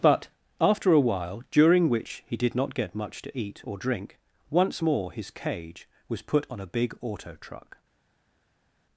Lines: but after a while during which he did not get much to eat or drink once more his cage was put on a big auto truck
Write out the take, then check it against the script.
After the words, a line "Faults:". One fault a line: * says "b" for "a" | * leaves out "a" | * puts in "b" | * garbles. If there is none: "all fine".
but after a while during which he did not get much to eat or drink once more his cage was put on a big auto truck
Faults:
all fine